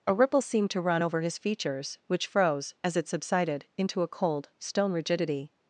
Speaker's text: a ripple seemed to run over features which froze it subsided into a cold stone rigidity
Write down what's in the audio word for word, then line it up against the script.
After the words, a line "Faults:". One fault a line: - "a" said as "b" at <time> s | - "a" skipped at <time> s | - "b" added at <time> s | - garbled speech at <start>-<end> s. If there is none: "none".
a ripple seemed to run over his features which froze as it subsided into a cold stone rigidity
Faults:
- "his" added at 1.2 s
- "as" added at 2.8 s